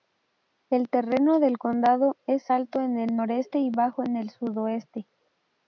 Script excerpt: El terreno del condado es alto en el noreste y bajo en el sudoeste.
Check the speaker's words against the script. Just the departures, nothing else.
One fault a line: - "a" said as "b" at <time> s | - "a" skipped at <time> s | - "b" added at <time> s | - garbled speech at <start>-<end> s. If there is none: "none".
none